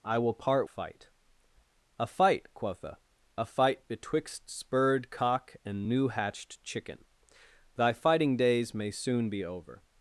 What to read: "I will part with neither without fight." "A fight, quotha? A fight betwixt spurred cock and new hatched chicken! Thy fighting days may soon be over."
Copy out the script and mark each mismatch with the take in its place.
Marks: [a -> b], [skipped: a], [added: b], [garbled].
"I will part [skipped: with neither without] fight." "A fight, quotha? A fight betwixt spurred cock and new hatched chicken! Thy fighting days may soon be over."